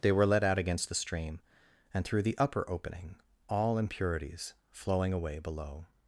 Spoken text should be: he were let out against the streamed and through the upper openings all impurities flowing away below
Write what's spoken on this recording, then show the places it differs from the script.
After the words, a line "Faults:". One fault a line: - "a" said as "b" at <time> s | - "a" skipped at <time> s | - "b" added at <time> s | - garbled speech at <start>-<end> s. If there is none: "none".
they were let out against the stream and through the upper opening all impurities flowing away below
Faults:
- "he" said as "they" at 0.0 s
- "streamed" said as "stream" at 0.9 s
- "openings" said as "opening" at 2.7 s